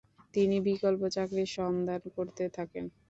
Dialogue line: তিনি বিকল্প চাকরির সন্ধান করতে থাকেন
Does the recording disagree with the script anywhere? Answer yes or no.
no